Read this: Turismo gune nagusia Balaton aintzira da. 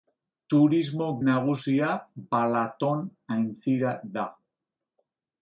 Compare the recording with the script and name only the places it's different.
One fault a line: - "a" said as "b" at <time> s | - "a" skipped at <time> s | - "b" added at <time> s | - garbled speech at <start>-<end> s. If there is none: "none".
- "gune" skipped at 1.1 s